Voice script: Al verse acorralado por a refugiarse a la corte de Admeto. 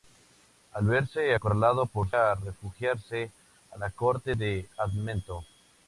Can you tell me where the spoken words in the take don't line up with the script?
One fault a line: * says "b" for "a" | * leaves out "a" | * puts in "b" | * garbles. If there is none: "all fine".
all fine